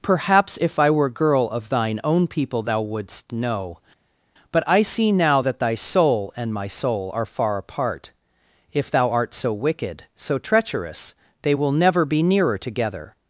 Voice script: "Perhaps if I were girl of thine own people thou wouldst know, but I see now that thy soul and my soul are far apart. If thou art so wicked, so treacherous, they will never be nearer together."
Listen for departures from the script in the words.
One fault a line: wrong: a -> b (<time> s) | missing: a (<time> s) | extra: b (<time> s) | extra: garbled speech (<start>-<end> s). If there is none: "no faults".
no faults